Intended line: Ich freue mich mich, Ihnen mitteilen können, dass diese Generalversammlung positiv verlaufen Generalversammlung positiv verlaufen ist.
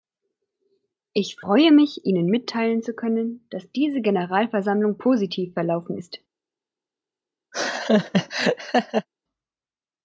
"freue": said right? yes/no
yes